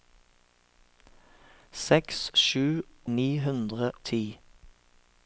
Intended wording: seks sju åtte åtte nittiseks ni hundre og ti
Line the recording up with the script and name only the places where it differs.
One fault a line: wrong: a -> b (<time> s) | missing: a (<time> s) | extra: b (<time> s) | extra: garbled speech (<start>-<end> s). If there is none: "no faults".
missing: åtte åtte nittiseks (2.6 s)
missing: og (3.9 s)